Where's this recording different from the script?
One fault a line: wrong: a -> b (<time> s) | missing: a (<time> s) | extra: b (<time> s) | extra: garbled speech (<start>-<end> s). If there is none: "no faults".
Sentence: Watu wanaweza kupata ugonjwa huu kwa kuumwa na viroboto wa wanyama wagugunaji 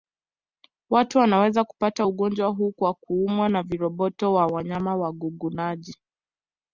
no faults